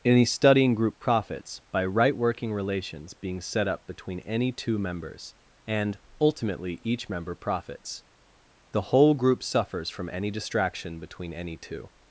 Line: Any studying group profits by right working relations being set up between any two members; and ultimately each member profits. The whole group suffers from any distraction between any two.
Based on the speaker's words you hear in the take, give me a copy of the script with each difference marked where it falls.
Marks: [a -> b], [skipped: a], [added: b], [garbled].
Any studying group profits by right working relations being set up between any two members; and ultimately each member profits. The whole group suffers from any distraction between any two.